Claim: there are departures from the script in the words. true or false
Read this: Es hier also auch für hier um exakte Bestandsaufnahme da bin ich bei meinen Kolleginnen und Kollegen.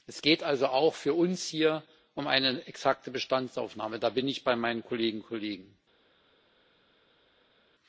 true